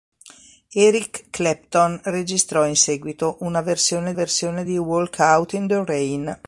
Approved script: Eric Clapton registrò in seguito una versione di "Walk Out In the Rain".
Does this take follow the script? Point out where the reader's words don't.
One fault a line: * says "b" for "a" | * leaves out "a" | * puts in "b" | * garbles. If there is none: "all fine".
* puts in "versione"